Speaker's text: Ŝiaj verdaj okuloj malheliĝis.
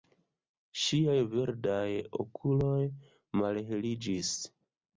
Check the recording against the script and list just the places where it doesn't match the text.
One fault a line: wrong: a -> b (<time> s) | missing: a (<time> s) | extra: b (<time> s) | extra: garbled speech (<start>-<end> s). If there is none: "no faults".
no faults